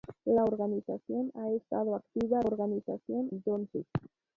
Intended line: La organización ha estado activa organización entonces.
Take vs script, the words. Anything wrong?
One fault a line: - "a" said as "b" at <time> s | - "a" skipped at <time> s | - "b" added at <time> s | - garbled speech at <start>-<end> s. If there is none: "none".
none